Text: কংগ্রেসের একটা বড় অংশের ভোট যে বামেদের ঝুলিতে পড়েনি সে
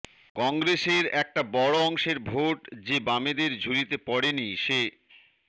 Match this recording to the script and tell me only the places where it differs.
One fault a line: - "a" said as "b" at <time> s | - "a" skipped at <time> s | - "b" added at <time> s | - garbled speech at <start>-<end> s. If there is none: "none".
none